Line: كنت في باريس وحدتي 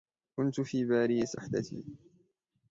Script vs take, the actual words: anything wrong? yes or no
no